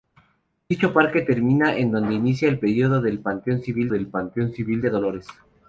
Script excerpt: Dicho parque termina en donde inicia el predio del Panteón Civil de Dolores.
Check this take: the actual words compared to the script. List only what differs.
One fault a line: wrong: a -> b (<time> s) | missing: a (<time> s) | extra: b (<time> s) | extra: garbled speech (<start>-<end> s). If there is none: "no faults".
extra: del Panteón Civil (3.9 s)